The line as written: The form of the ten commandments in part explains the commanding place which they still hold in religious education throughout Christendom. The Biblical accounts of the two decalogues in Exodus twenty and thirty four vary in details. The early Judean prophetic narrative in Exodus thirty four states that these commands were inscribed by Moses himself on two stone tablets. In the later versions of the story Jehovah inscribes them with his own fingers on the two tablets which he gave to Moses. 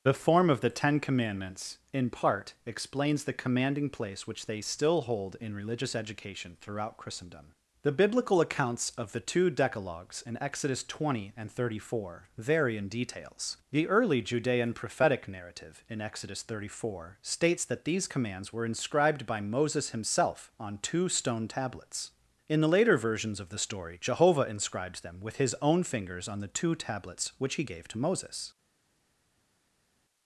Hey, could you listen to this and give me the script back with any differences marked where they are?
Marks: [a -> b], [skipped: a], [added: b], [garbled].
The form of the ten commandments in part explains the commanding place which they still hold in religious education throughout Christendom. The Biblical accounts of the two decalogues in Exodus twenty and thirty four vary in details. The early Judean prophetic narrative in Exodus thirty four states that these commands were inscribed by Moses himself on two stone tablets. In the later versions of the story Jehovah inscribes them with his own fingers on the two tablets which he gave to Moses.